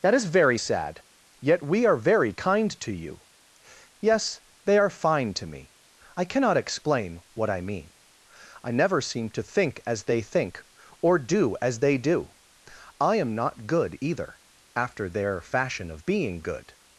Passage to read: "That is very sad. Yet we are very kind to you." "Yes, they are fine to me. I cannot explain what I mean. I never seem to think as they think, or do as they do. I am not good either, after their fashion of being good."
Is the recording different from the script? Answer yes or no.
no